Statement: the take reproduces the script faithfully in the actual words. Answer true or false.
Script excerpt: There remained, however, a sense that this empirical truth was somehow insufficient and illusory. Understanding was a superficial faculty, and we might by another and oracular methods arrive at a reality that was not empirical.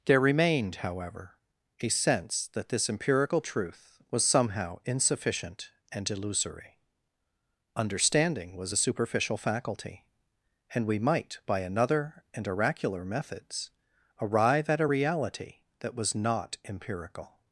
true